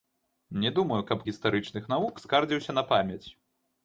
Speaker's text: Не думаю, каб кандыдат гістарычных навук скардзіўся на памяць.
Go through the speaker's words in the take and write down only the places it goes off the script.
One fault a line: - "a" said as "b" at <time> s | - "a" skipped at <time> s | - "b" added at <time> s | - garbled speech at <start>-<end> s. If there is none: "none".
- "кандыдат" skipped at 1.2 s